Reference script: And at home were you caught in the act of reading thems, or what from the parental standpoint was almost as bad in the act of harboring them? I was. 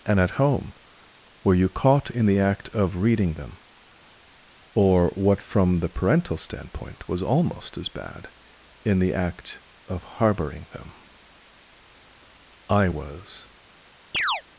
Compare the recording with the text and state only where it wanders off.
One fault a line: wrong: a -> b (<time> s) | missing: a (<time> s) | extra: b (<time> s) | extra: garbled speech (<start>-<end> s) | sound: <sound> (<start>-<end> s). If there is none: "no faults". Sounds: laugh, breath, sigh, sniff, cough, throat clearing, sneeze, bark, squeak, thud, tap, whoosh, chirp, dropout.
wrong: thems -> them (3.4 s)
sound: chirp (14.1-14.4 s)